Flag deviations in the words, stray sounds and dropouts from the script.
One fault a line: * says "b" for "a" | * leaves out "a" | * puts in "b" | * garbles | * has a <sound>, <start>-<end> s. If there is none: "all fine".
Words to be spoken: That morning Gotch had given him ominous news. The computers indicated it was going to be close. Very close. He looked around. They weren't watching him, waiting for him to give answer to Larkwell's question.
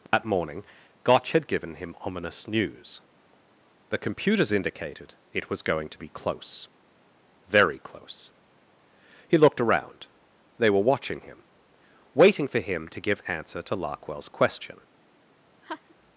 * has a dropout, 0.1-0.1 s
* says "were" for "weren't"
* has a laugh, 15.6-16.0 s